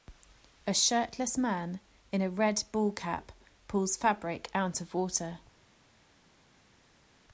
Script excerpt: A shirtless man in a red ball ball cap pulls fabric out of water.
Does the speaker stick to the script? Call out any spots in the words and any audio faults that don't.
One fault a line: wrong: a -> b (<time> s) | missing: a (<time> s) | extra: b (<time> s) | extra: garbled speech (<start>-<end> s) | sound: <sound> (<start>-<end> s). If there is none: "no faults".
missing: ball (2.9 s)